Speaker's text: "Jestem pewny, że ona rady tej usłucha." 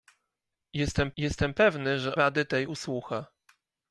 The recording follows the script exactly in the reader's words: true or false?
false